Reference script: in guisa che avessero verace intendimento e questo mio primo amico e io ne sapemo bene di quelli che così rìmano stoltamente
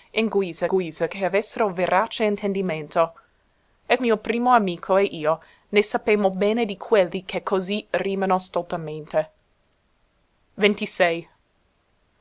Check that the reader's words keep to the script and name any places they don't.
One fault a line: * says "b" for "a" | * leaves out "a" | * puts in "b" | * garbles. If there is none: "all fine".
* puts in "guisa"
* leaves out "questo"